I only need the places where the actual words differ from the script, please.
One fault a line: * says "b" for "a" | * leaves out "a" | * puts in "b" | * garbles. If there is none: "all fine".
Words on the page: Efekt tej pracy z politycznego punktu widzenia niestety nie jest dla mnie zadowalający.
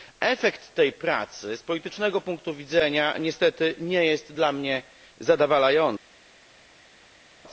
all fine